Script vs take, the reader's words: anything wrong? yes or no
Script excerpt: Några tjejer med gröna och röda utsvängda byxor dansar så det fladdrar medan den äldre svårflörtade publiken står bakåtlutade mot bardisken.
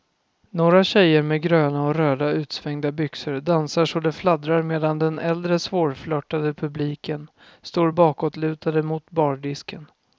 no